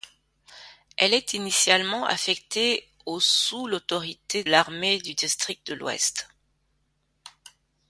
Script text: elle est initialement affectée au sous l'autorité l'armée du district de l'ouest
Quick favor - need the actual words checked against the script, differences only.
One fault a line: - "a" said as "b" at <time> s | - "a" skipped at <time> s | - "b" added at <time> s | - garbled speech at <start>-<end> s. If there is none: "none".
none